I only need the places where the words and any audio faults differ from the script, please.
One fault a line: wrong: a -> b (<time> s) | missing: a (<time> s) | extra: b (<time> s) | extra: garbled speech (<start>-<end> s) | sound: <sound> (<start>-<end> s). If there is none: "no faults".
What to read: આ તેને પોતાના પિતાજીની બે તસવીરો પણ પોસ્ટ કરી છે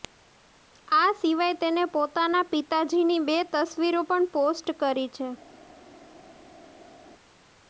extra: સિવાય (1.2 s)